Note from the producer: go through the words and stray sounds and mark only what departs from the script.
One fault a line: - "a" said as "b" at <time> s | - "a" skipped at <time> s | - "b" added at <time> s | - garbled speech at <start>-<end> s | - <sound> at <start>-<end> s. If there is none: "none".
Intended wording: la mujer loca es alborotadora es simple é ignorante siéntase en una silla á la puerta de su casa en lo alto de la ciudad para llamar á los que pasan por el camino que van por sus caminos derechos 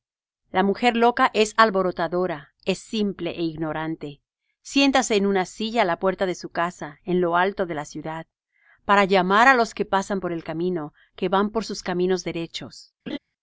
- laugh at 13.1-13.2 s